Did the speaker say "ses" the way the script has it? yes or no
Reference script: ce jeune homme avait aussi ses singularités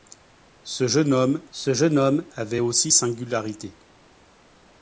no